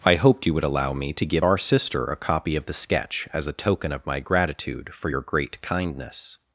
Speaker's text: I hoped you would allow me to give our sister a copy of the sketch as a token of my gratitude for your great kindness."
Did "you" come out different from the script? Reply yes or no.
no